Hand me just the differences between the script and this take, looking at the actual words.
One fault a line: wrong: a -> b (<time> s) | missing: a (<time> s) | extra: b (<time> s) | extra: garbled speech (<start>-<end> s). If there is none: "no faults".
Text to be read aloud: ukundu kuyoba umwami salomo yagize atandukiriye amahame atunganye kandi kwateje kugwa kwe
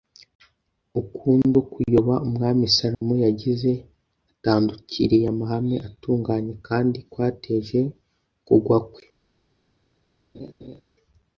no faults